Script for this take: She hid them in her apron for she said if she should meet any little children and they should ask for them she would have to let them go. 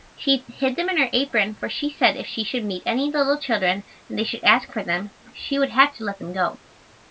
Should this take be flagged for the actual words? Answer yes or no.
no